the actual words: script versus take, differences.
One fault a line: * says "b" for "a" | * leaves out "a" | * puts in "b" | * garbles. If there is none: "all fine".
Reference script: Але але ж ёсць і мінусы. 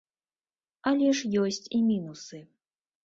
* leaves out "але"